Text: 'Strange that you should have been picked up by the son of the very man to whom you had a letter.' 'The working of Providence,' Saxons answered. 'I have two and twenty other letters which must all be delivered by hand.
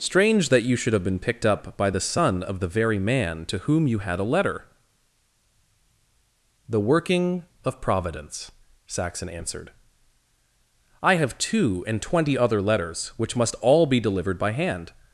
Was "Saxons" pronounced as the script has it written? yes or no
no